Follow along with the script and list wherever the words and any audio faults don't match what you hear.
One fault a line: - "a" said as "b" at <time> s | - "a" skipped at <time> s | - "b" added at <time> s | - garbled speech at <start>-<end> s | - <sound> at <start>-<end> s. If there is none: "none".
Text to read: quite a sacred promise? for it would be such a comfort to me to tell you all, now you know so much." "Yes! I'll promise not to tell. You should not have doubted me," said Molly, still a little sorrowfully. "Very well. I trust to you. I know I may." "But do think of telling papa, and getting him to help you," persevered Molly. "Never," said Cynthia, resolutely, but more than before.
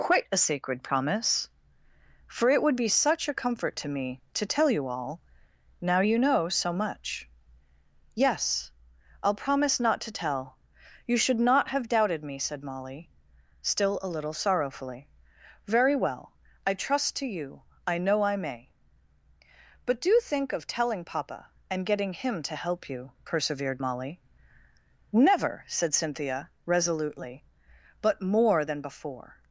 none